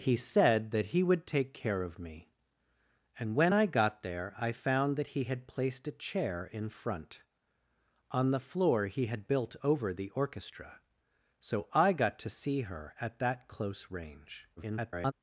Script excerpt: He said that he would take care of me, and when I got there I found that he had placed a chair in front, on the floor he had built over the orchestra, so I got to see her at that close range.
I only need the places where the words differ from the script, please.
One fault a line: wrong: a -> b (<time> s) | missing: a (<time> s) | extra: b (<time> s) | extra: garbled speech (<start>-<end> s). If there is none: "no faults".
extra: garbled speech (14.6-15.1 s)